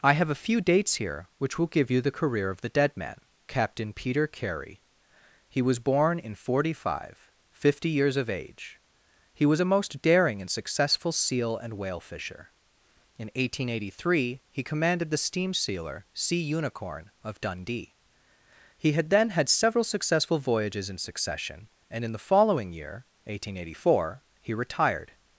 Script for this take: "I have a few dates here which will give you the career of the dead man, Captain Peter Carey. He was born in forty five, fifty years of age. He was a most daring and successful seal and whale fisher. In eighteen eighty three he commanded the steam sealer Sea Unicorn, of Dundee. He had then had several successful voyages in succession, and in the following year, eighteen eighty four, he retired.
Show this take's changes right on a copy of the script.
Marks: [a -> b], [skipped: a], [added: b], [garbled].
"I have a few dates here which will give you the career of the dead man, Captain Peter Carey. He was born in forty five, fifty years of age. He was a most daring and successful seal and whale fisher. In eighteen eighty three he commanded the steam sealer Sea Unicorn, of Dundee. He had then had several successful voyages in succession, and in the following year, eighteen eighty four, he retired.